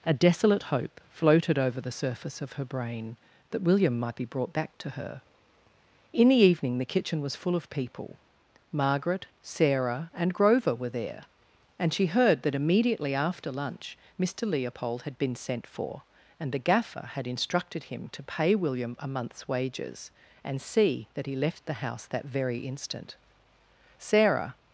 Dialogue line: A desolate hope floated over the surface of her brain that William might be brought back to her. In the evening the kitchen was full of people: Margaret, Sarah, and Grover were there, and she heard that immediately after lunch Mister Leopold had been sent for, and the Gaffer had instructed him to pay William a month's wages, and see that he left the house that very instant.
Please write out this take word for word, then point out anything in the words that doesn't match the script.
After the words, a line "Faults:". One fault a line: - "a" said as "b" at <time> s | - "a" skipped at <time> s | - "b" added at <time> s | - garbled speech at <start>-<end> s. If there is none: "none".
A desolate hope floated over the surface of her brain that William might be brought back to her. In the evening the kitchen was full of people: Margaret, Sarah, and Grover were there, and she heard that immediately after lunch Mister Leopold had been sent for, and the Gaffer had instructed him to pay William a month's wages, and see that he left the house that very instant. Sarah
Faults:
- "Sarah" added at 24.0 s